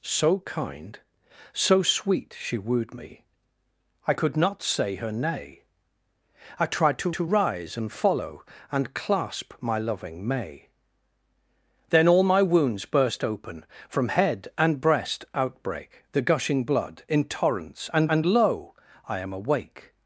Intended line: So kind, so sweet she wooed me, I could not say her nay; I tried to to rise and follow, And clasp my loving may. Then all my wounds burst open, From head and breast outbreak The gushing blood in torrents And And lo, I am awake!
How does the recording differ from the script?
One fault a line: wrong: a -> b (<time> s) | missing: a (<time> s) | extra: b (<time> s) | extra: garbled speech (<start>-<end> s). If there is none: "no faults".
no faults